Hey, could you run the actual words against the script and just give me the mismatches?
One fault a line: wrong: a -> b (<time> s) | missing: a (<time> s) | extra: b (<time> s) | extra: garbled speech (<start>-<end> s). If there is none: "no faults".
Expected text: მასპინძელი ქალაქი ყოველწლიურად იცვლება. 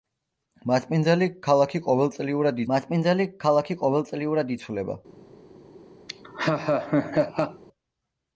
extra: მასპინძელი ქალაქი ყოველწლიურად (2.7 s)